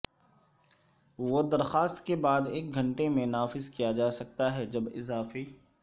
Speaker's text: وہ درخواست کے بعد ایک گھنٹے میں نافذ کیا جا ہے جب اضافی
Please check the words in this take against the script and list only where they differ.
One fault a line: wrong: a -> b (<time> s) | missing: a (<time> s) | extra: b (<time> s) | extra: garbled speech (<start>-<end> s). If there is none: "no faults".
extra: سکتا (4.1 s)